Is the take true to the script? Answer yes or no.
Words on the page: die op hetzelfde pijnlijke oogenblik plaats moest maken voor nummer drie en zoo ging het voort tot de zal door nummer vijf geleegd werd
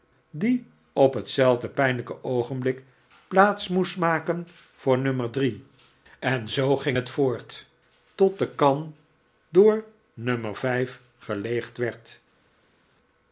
no